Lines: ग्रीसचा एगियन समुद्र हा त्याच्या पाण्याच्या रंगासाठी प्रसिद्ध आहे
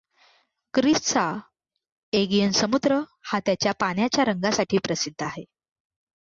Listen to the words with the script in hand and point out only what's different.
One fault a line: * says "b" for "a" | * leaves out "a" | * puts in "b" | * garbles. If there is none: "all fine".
all fine